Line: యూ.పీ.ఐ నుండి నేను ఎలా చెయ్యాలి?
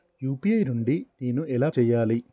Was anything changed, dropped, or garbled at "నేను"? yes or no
no